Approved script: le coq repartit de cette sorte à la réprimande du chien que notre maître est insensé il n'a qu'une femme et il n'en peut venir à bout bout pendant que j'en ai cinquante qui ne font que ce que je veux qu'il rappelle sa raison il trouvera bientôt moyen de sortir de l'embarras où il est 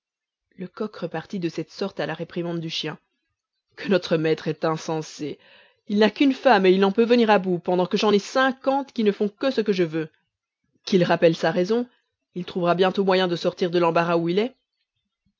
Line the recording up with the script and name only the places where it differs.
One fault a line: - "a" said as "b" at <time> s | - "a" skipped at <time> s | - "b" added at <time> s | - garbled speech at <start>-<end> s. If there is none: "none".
- "bout" skipped at 7.6 s